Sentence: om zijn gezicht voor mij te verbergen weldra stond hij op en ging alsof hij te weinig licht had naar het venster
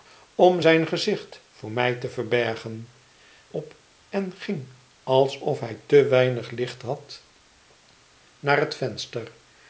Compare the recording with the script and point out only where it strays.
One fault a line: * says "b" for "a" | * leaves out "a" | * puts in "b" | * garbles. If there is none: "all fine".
* leaves out "weldra stond hij"